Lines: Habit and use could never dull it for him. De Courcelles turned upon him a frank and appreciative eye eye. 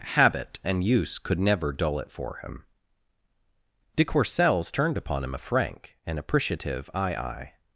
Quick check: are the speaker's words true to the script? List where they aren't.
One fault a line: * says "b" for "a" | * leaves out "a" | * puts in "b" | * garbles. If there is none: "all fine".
all fine